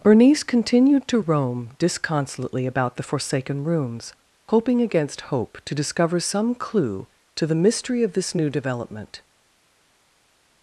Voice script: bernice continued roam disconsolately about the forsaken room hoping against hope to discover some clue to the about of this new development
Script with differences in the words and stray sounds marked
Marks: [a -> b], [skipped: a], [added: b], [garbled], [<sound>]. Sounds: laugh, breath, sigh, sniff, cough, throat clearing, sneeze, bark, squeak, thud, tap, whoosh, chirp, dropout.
bernice continued [added: to] roam disconsolately about the forsaken [room -> rooms] hoping against hope to discover some clue to the [about -> mystery] of this new development